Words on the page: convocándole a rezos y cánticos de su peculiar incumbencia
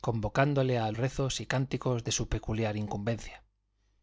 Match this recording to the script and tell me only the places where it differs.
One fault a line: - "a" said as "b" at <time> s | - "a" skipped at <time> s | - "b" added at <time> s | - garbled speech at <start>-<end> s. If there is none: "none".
none